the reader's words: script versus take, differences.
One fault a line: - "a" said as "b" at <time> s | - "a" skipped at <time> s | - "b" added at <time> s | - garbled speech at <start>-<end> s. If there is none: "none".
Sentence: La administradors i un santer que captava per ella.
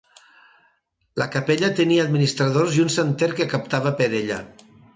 - "capella tenia" added at 1.4 s